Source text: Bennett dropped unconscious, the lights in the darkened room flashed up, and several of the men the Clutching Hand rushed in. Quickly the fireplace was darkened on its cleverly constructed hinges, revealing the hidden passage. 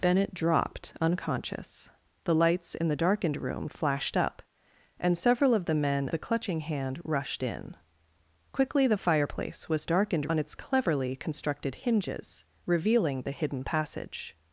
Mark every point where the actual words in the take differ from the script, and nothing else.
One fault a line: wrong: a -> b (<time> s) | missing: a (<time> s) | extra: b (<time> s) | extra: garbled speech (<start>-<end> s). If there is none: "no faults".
no faults